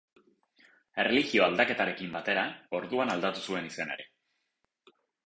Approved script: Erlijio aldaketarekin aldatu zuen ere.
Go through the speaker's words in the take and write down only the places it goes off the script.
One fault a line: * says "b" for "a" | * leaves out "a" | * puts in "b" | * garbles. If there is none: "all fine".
* puts in "batera orduan"
* puts in "izena"